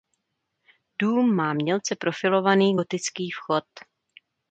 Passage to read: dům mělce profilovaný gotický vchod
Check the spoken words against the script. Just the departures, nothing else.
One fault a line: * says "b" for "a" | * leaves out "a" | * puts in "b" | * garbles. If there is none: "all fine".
* puts in "má"